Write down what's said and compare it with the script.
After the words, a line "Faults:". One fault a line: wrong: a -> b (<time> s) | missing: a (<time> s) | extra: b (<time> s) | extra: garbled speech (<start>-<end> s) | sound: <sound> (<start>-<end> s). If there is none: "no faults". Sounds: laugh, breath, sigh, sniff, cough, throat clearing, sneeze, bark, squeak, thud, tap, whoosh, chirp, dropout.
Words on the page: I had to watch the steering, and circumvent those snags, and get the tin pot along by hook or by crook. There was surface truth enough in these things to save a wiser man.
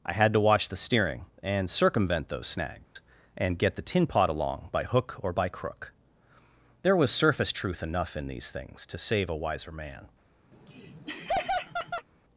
I had to watch the steering, and circumvent those snags, and get the tin pot along by hook or by crook. There was surface truth enough in these things to save a wiser man.
Faults:
sound: dropout (2.8-3.0 s)
sound: laugh (10.5-12.1 s)